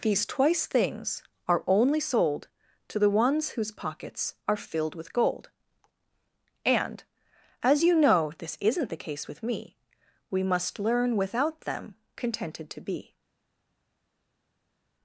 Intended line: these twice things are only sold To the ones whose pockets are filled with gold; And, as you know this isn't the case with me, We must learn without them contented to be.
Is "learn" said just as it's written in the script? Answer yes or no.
yes